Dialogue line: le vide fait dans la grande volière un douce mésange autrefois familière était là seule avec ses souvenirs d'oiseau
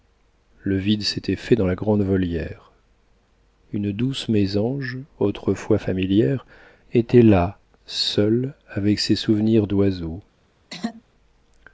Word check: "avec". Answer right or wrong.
right